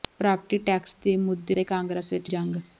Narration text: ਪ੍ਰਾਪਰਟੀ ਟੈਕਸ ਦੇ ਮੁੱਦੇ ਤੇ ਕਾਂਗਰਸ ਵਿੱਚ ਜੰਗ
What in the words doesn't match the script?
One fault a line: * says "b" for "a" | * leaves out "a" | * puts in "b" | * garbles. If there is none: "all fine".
all fine